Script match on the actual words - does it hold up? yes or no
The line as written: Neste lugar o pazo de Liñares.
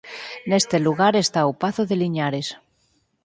no